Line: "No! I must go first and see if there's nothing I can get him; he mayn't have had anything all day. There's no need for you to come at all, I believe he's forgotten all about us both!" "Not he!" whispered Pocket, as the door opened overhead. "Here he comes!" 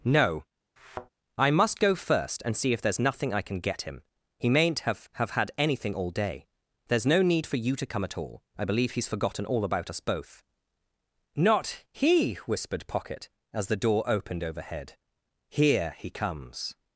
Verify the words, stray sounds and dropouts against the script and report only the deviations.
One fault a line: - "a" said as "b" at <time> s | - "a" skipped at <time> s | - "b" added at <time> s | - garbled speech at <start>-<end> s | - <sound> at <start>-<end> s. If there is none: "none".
- thud at 0.8-1.1 s
- "have" added at 5.1 s